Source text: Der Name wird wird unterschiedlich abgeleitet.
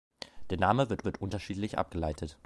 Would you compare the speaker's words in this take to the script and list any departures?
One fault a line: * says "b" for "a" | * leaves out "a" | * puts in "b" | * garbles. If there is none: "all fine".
all fine